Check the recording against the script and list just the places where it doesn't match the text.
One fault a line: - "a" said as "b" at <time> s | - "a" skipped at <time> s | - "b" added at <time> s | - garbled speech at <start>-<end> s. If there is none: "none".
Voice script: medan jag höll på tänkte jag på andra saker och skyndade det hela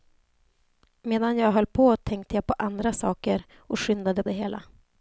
none